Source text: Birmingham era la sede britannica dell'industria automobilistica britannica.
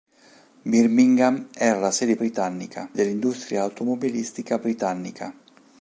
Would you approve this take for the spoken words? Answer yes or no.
yes